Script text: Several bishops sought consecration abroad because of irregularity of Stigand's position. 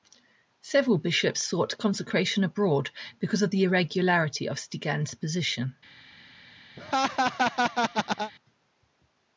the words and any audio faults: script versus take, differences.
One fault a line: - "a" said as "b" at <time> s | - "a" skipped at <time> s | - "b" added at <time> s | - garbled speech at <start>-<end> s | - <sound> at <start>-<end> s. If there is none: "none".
- "the" added at 3.5 s
- laugh at 6.8-8.3 s